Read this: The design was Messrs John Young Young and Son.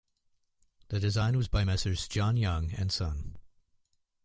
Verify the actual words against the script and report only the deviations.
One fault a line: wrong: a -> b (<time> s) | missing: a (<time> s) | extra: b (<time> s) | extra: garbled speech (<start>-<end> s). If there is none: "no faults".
extra: by (1.5 s)
missing: Young (2.7 s)